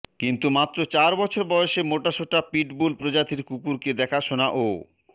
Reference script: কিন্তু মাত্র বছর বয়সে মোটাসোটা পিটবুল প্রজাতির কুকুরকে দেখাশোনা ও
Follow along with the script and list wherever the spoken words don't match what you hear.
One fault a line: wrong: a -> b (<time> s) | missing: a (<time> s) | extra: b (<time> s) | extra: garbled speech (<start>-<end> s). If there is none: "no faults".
extra: চার (0.9 s)